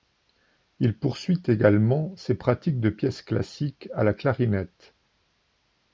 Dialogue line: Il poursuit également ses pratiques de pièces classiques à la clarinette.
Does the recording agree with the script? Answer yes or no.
yes